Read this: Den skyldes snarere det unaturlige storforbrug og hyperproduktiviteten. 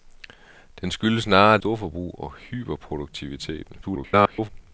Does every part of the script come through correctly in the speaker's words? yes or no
no